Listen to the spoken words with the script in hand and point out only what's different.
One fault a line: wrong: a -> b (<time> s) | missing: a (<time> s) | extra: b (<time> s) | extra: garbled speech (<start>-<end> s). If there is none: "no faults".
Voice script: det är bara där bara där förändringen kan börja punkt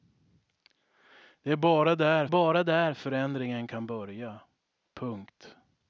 no faults